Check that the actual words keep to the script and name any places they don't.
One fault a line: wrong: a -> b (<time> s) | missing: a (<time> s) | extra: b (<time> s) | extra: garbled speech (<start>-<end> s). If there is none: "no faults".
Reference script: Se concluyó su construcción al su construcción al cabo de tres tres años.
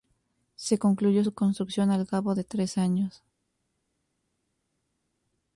missing: su construcción al (2.0 s)
missing: tres (2.8 s)